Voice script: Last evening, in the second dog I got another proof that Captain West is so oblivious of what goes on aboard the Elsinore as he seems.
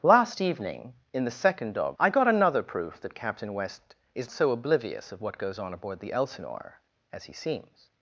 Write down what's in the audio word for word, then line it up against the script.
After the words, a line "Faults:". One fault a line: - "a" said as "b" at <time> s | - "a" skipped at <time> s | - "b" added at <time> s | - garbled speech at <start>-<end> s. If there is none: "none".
Last evening, in the second dog I got another proof that Captain West is so oblivious of what goes on aboard the Elsinore as he seems.
Faults:
none